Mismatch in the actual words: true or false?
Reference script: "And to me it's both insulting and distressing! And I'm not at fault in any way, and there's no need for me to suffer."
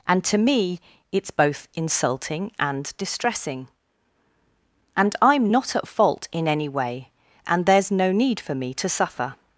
false